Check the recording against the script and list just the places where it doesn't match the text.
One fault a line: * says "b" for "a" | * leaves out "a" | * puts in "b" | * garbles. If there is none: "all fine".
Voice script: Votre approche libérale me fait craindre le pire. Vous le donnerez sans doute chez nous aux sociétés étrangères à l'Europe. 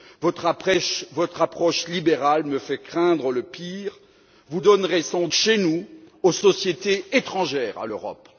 * leaves out "le"
* leaves out "doute"